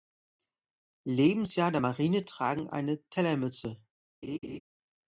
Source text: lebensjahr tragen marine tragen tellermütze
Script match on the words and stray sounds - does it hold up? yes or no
no